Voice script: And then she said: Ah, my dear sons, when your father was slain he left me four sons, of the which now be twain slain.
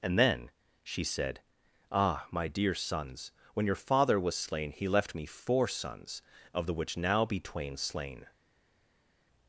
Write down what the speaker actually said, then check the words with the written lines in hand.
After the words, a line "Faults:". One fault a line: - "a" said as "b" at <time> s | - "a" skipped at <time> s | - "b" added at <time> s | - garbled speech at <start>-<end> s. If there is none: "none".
And then she said: Ah, my dear sons, when your father was slain he left me four sons, of the which now be twain slain.
Faults:
none